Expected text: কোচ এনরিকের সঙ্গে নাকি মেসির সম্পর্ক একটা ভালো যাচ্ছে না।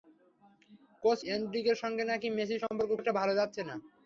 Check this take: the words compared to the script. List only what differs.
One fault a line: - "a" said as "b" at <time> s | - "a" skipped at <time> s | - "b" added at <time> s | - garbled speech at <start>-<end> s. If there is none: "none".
none